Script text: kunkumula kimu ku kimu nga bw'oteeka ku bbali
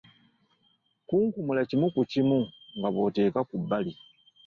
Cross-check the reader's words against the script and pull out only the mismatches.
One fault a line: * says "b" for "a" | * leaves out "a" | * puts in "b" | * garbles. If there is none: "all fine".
all fine